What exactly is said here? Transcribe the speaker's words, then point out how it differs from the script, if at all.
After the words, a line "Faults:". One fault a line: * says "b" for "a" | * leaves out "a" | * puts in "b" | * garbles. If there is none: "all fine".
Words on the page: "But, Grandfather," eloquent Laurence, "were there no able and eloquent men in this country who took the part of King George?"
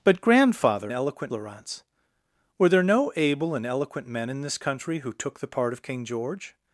"But, Grandfather," eloquent Laurence, "were there no able and eloquent men in this country who took the part of King George?"
Faults:
all fine